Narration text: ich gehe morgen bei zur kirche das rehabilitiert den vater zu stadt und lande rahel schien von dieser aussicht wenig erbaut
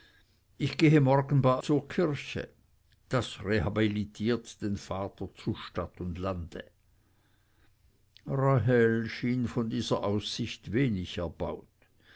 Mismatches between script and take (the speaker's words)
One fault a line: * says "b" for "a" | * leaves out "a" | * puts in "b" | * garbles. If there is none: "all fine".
all fine